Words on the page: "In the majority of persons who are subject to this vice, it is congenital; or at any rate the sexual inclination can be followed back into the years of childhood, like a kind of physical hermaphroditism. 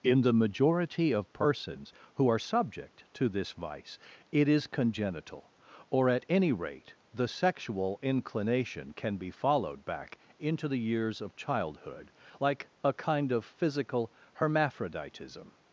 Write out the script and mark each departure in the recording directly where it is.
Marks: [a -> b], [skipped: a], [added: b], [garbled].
"In the majority of persons who are subject to this vice, it is congenital; or at any rate the sexual inclination can be followed back into the years of childhood, like a kind of physical hermaphroditism.